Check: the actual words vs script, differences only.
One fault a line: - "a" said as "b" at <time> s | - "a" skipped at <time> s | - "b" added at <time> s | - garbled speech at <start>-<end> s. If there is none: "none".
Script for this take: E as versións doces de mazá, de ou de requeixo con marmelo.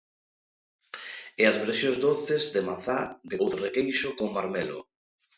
none